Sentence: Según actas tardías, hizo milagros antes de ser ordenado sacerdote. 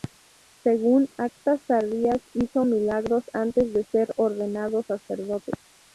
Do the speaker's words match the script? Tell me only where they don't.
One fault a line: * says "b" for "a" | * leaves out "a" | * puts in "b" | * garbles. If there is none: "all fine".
all fine